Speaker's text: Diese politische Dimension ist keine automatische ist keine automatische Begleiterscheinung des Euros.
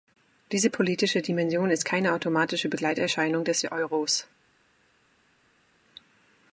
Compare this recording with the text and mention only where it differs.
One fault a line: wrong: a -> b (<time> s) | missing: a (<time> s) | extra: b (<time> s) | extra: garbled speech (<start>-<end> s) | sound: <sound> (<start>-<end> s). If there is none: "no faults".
missing: ist keine automatische (2.7 s)